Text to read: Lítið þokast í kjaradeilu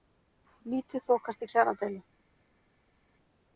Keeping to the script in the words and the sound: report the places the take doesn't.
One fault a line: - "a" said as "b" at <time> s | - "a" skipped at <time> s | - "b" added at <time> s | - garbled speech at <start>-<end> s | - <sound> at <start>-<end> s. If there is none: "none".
none